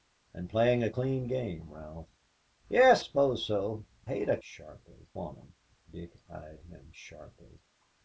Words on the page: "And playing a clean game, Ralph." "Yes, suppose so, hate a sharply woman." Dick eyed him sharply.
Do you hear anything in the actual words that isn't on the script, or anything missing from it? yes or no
no